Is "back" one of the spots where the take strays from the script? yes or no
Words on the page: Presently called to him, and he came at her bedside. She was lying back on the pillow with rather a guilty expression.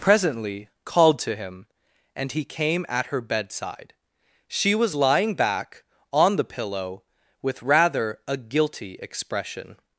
no